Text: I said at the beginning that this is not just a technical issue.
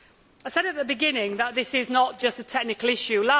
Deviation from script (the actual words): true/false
false